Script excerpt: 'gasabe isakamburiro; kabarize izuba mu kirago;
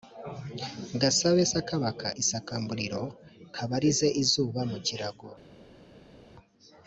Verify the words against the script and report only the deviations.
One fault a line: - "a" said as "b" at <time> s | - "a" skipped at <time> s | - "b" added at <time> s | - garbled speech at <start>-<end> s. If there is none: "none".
- "sakabaka" added at 1.5 s